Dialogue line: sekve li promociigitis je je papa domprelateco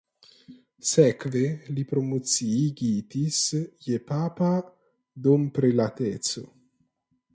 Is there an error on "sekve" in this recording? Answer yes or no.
no